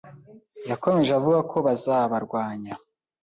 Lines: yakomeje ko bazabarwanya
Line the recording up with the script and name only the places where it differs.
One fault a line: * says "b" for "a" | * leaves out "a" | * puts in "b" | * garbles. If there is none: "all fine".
* puts in "avuga"